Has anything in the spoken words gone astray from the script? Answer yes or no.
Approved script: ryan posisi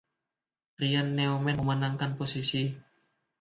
yes